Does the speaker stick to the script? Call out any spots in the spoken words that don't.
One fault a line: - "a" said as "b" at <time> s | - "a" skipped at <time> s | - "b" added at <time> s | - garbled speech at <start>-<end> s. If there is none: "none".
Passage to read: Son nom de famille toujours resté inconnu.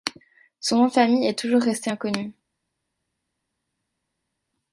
- "est" added at 1.3 s